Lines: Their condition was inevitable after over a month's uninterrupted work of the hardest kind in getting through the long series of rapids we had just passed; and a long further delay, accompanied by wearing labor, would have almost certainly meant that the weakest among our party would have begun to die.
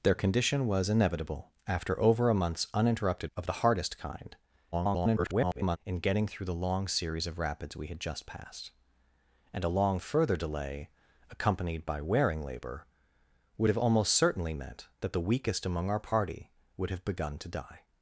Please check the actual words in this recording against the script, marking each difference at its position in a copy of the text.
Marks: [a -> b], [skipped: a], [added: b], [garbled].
Their condition was inevitable after over a month's uninterrupted [skipped: work] of the hardest kind [garbled] in getting through the long series of rapids we had just passed; and a long further delay, accompanied by wearing labor, would have almost certainly meant that the weakest among our party would have begun to die.